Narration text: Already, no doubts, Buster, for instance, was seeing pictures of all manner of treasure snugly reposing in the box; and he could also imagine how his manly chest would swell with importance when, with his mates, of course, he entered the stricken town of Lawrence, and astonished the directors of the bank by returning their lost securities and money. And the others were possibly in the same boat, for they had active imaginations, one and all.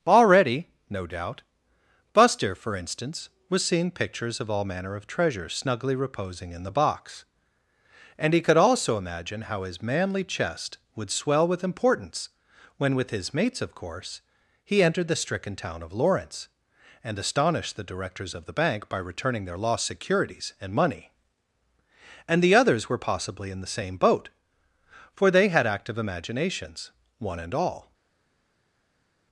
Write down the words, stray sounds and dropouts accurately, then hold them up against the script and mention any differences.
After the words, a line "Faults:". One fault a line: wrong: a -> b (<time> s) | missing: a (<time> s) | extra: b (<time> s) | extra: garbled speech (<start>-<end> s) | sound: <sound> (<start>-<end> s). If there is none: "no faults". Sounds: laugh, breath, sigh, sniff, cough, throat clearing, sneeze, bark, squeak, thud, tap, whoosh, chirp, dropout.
Already, no doubt, Buster, for instance, was seeing pictures of all manner of treasure snugly reposing in the box; and he could also imagine how his manly chest would swell with importance when, with his mates, of course, he entered the stricken town of Lawrence, and astonished the directors of the bank by returning their lost securities and money. And the others were possibly in the same boat, for they had active imaginations, one and all.
Faults:
wrong: doubts -> doubt (1.1 s)